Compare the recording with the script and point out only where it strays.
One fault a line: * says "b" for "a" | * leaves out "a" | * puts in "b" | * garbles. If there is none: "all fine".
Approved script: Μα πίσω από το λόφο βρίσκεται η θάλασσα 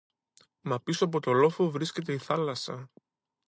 all fine